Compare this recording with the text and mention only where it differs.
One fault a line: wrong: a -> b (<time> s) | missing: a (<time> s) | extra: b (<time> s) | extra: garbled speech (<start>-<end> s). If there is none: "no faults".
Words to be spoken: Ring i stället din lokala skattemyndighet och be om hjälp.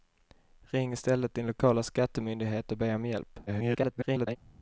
extra: garbled speech (3.5-4.4 s)